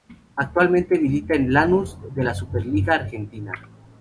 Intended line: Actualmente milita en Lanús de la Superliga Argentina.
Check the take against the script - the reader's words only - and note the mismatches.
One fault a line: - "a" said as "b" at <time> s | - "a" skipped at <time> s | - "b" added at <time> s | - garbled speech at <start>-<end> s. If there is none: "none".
none